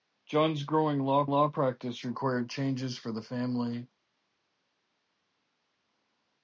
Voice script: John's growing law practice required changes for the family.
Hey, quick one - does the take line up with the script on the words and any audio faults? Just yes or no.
no